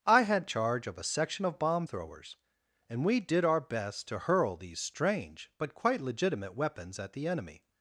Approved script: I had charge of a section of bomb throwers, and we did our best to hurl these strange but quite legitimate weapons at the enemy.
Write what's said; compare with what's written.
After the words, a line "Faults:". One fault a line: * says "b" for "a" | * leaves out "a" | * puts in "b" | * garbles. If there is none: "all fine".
I had charge of a section of bomb throwers, and we did our best to hurl these strange but quite legitimate weapons at the enemy.
Faults:
all fine